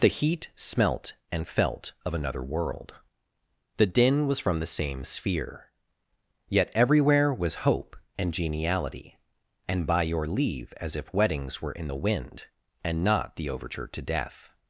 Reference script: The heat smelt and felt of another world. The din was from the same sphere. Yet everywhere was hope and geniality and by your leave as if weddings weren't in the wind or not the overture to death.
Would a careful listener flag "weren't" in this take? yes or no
yes